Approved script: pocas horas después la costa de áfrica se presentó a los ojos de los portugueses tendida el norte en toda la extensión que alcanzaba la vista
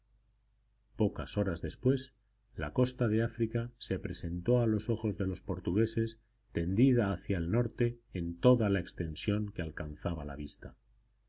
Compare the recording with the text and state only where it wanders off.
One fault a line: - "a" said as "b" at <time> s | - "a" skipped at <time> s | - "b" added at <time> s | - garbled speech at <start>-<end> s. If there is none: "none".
- "hacia" added at 7.1 s